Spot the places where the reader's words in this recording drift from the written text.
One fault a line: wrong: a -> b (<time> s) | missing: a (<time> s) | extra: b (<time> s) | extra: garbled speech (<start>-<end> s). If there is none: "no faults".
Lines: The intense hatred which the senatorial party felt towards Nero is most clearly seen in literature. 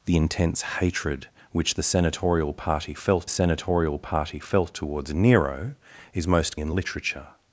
extra: senatorial party felt (3.3 s)
missing: clearly seen (6.6 s)